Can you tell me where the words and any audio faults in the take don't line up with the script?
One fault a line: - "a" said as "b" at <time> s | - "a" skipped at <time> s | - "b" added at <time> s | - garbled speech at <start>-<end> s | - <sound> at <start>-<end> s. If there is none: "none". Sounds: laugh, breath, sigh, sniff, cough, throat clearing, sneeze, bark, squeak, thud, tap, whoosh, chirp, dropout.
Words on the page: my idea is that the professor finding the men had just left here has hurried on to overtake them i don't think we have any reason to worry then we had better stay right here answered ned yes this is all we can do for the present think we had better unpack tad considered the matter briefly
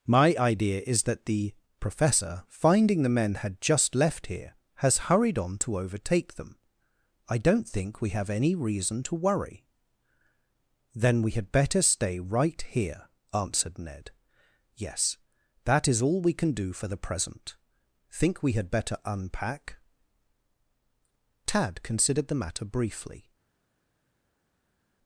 - "this" said as "that" at 15.7 s